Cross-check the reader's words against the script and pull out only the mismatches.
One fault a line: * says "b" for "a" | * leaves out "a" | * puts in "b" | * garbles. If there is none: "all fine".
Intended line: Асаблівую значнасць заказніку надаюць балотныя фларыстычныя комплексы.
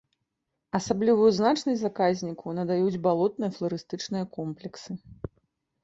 all fine